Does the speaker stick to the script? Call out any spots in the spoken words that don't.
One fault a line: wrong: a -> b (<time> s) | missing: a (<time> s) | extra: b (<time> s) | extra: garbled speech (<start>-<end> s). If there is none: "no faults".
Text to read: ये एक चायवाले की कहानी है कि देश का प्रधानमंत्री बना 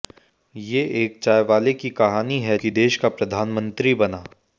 no faults